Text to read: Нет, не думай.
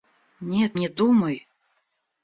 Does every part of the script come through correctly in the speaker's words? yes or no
yes